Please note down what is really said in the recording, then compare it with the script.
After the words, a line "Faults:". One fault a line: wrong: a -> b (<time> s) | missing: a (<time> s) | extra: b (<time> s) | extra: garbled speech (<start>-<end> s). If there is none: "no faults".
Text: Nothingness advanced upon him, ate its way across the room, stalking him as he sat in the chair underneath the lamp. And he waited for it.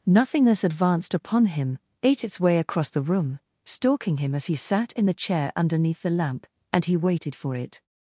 Nothingness advanced upon him, ate its way across the room, stalking him as he sat in the chair underneath the lamp. And he waited for it.
Faults:
no faults